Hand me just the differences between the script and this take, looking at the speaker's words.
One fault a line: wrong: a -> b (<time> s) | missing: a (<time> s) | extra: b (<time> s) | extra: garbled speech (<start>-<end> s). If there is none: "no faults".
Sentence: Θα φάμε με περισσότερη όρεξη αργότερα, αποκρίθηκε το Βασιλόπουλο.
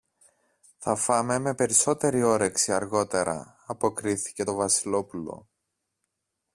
no faults